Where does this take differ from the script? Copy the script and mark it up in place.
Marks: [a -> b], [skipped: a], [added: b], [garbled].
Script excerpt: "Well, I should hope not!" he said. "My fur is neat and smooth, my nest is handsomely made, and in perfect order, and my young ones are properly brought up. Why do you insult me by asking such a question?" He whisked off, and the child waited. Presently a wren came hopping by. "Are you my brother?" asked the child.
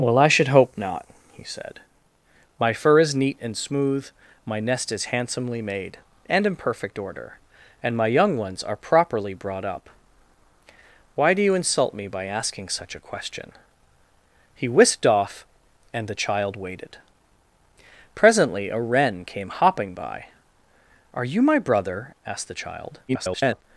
"Well, I should hope not!" he said. "My fur is neat and smooth, my nest is handsomely made, and in perfect order, and my young ones are properly brought up. Why do you insult me by asking such a question?" He whisked off, and the child waited. Presently a wren came hopping by. "Are you my brother?" asked the child. [garbled]